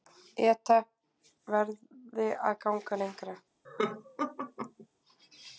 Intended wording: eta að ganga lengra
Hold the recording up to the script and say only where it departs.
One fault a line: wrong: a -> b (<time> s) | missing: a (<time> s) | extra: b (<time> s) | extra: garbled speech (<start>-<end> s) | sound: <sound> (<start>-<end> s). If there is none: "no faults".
extra: verði (1.6 s)
sound: laugh (3.6-4.9 s)